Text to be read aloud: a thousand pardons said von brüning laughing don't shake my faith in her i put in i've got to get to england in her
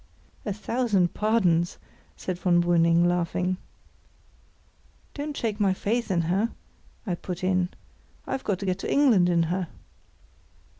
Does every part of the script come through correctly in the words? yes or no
yes